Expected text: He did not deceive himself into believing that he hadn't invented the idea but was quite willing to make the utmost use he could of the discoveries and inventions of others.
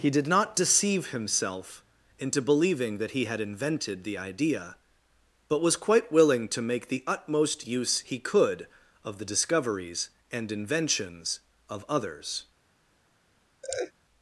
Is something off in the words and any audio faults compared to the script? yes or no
yes